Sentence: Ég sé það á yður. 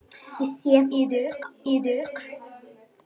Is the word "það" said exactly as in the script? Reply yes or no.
no